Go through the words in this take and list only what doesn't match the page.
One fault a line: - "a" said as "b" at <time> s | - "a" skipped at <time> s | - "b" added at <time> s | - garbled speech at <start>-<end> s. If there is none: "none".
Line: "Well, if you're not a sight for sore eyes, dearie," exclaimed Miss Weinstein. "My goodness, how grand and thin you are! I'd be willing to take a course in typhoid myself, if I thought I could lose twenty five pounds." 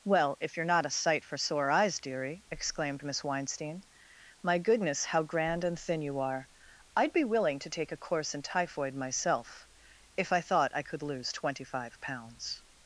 none